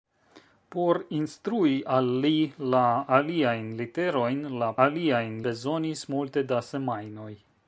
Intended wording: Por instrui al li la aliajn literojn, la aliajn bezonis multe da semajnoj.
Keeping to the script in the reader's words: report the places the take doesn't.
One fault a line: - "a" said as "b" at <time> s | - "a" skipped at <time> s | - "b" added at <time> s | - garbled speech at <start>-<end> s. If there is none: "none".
none